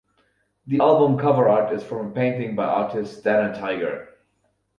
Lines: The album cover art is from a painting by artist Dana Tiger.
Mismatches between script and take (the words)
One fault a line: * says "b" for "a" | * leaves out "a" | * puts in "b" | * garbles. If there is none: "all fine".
all fine